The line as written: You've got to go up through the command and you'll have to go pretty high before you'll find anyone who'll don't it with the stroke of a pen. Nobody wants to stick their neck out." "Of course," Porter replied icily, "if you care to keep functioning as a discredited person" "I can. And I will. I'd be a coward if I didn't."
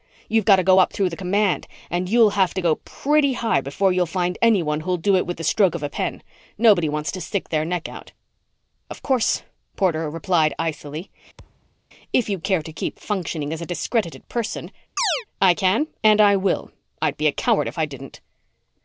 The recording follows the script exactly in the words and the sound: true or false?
false